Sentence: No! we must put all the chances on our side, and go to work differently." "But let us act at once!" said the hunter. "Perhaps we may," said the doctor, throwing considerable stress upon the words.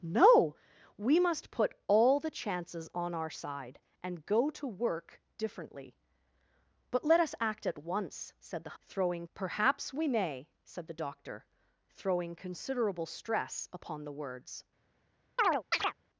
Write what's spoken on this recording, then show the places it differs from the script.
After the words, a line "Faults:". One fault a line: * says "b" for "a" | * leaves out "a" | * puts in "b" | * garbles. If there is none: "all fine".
No! we must put all the chances on our side, and go to work differently." "But let us act at once!" said the throwing. "Perhaps we may," said the doctor, throwing considerable stress upon the words.
Faults:
* says "throwing" for "hunter"